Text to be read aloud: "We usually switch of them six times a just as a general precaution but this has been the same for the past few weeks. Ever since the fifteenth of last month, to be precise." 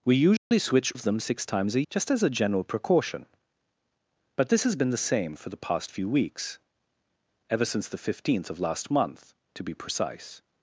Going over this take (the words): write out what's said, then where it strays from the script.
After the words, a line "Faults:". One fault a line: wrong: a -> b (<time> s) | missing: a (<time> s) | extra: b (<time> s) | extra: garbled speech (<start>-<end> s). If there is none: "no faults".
"We usually switch of them six times a just as a general precaution but this has been the same for the past few weeks. Ever since the fifteenth of last month, to be precise."
Faults:
no faults